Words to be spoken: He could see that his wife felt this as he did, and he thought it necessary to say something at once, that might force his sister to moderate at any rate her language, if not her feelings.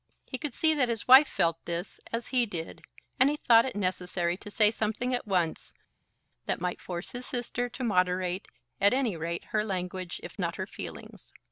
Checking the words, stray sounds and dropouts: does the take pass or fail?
pass